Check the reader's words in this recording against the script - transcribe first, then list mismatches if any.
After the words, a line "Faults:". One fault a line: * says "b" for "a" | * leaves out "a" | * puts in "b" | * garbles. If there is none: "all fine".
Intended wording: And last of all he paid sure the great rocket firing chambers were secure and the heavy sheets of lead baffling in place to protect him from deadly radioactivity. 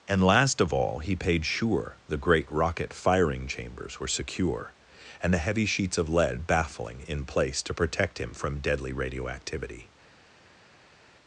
And last of all he paid sure the great rocket firing chambers were secure and the heavy sheets of lead baffling in place to protect him from deadly radioactivity.
Faults:
all fine